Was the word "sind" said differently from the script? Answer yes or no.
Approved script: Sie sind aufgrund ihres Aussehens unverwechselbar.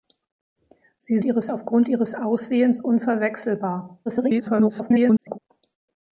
yes